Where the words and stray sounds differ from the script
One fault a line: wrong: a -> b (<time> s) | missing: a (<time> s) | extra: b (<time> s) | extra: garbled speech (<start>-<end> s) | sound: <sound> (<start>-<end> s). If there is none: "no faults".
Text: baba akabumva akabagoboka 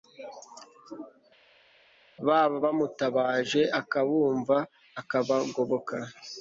extra: bamutabaje (2.6 s)